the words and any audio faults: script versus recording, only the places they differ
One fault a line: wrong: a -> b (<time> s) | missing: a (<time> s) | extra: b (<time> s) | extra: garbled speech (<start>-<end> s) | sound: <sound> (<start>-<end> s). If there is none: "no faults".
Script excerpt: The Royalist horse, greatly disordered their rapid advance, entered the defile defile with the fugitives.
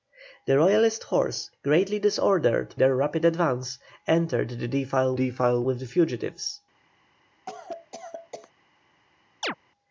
sound: cough (7.5-8.5 s)
sound: chirp (9.4-9.5 s)